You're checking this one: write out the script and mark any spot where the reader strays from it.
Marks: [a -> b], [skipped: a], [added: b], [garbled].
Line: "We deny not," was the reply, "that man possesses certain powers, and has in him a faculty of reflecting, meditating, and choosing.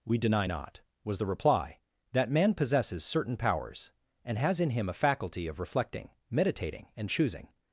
"We deny not," was the reply, "that man possesses certain powers, and has in him a faculty of reflecting, meditating, and choosing.